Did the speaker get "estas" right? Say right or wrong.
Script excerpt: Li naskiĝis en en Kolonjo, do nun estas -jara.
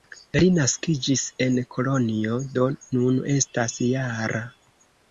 right